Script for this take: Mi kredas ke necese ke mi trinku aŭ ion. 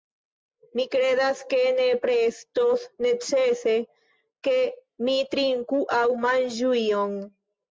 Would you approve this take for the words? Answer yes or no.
no